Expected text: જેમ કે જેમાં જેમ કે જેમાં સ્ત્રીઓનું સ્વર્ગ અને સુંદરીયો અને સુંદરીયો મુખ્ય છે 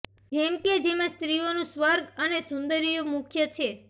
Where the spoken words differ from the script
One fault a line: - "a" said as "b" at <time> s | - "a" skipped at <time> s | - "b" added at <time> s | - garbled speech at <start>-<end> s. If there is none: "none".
- "જેમ કે જેમાં" skipped at 1.1 s
- "અને સુંદરીયો" skipped at 3.1 s